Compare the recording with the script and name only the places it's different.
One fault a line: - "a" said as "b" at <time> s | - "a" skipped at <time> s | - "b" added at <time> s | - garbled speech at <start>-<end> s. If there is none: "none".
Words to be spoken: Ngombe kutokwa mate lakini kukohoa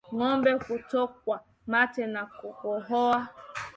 - "lakini" said as "na" at 2.1 s